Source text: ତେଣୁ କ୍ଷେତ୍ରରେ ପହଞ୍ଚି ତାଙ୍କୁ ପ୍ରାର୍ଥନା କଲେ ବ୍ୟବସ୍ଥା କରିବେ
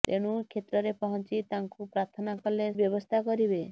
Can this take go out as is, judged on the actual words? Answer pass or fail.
pass